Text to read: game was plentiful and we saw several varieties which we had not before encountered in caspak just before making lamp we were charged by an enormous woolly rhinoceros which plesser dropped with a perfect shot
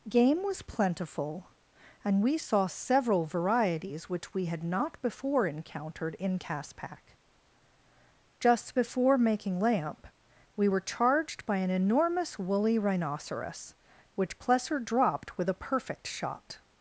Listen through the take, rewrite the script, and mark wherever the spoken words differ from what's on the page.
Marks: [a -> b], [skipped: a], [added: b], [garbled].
game was plentiful and we saw several varieties which we had not before encountered in caspak just before making lamp we were charged by an enormous woolly rhinoceros which plesser dropped with a perfect shot